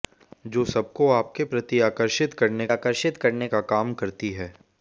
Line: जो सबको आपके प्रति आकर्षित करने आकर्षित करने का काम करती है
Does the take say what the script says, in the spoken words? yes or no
yes